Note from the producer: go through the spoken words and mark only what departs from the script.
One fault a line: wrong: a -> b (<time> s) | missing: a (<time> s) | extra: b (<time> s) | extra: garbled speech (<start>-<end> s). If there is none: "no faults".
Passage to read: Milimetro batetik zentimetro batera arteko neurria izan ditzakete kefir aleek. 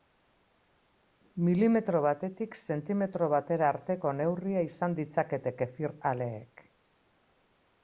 no faults